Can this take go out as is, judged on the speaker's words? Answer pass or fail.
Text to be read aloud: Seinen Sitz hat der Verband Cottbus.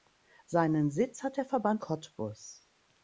pass